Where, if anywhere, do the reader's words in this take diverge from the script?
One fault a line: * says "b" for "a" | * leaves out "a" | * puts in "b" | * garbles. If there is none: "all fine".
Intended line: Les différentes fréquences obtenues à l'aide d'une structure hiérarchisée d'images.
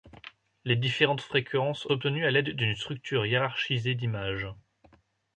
all fine